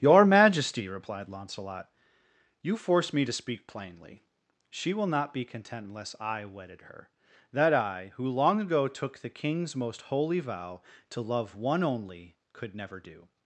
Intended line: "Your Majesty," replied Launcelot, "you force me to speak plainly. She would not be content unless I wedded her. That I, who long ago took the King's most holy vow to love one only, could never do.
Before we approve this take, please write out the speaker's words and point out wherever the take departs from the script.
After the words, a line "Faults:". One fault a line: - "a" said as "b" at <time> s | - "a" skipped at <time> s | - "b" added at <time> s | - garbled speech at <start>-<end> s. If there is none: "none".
"Your Majesty," replied Launcelot, "you force me to speak plainly. She will not be content unless I wedded her. That I, who long ago took the King's most holy vow to love one only, could never do.
Faults:
- "would" said as "will" at 5.0 s